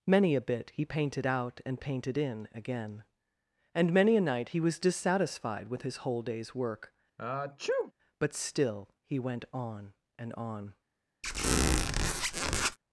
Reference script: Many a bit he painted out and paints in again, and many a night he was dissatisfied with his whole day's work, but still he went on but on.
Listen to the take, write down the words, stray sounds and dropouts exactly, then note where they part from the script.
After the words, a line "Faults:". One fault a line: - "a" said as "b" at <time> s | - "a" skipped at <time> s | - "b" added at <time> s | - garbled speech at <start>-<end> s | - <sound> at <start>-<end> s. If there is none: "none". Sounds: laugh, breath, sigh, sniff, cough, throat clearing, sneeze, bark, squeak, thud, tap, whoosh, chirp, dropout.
Many a bit he painted out and painted in again, and many a night he was dissatisfied with his whole day's work, but still he went on and on.
Faults:
- "paints" said as "painted" at 1.8 s
- sneeze at 7.2-7.9 s
- "but" said as "and" at 10.2 s
- squeak at 11.2-12.8 s